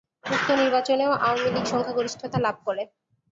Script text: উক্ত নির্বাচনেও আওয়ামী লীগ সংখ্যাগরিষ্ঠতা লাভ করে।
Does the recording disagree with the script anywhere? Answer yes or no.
no